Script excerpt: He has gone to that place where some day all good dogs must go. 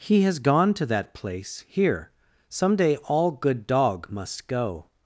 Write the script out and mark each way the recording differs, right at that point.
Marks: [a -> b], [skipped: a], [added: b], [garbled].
He has gone to that place [where -> here] some day all good [dogs -> dog] must go.